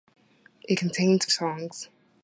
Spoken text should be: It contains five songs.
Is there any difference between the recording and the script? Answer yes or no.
yes